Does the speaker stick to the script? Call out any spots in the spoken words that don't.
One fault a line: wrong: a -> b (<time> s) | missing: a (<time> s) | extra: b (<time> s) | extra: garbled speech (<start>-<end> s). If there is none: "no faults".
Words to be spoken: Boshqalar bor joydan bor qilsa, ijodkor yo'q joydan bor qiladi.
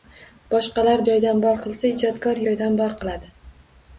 missing: bor (1.0 s)
missing: yo'q (2.4 s)